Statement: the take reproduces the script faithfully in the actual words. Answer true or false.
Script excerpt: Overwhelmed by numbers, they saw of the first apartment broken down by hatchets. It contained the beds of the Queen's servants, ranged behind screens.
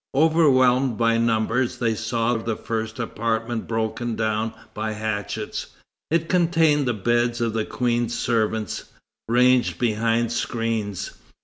true